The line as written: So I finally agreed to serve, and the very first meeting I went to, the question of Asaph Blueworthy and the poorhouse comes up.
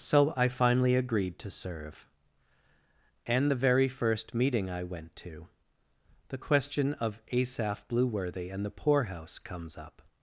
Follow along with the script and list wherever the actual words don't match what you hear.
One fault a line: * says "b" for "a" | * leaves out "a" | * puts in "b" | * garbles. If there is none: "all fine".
all fine